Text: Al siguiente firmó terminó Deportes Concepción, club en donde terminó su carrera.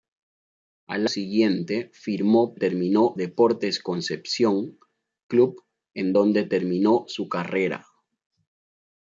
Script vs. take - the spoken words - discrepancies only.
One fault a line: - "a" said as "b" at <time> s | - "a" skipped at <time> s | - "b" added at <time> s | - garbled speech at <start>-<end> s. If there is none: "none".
none